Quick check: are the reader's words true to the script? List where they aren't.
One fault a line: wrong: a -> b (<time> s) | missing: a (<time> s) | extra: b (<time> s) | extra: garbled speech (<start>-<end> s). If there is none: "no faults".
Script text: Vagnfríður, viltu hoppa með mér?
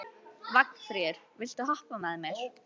no faults